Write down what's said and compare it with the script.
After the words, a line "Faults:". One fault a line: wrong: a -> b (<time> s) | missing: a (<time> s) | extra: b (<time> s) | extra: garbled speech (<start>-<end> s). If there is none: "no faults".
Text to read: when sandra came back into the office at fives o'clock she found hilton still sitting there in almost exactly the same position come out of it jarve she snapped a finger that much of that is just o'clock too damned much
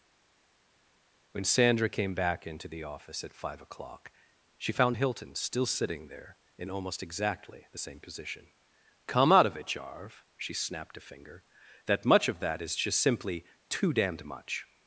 when sandra came back into the office at five o'clock she found hilton still sitting there in almost exactly the same position come out of it jarve she snapped a finger that much of that is just simply too damned much
Faults:
wrong: fives -> five (3.3 s)
wrong: o'clock -> simply (13.0 s)